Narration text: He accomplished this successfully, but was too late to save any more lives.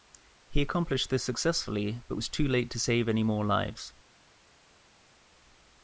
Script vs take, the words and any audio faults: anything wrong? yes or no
no